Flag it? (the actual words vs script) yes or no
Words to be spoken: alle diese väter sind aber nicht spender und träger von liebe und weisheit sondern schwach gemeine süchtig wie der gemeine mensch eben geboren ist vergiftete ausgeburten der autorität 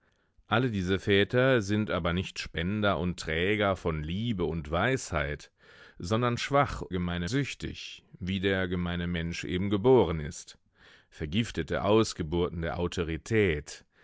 no